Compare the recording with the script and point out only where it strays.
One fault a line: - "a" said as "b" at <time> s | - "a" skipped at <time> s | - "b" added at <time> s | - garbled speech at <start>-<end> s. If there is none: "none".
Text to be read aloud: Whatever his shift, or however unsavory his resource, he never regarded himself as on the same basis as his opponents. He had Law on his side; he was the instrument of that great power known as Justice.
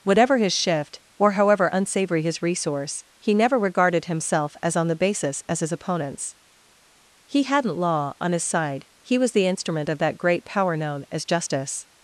- "same" skipped at 5.0 s
- "had" said as "hadn't" at 7.4 s